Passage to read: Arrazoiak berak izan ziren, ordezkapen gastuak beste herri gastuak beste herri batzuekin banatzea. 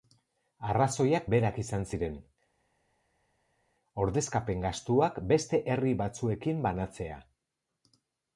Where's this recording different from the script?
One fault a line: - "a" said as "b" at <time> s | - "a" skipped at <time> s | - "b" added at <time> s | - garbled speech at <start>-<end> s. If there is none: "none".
- "gastuak beste herri" skipped at 6.0 s